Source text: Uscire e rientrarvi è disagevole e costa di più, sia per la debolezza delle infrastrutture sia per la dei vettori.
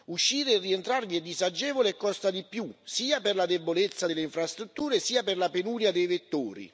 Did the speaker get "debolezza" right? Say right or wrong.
right